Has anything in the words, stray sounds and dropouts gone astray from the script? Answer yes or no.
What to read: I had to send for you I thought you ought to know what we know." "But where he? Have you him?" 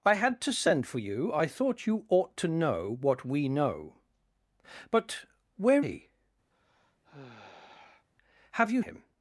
yes